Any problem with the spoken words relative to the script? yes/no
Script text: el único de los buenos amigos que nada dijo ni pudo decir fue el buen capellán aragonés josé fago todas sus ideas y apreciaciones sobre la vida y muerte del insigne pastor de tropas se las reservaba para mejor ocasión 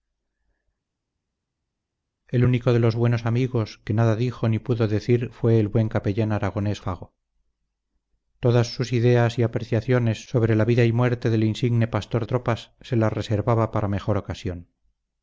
yes